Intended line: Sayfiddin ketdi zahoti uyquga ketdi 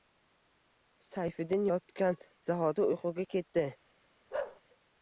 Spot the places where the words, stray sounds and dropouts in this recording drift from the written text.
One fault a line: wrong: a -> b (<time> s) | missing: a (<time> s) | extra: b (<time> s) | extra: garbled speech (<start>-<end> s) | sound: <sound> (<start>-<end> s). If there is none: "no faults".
wrong: ketdi -> yotgan (1.7 s)
sound: bark (4.3-4.6 s)